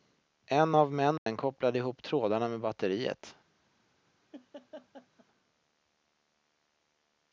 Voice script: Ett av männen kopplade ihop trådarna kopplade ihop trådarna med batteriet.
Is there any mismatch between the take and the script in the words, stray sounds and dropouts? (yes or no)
yes